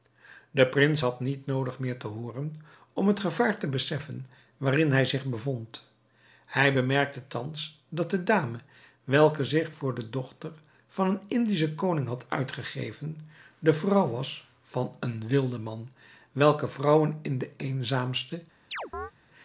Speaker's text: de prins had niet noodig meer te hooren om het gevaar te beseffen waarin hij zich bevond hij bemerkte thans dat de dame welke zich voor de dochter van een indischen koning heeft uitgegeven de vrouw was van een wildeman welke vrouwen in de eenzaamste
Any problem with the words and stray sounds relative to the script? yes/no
yes